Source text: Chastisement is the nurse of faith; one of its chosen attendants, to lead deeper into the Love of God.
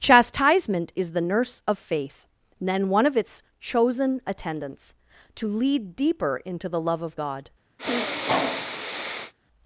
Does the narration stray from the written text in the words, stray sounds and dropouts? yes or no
yes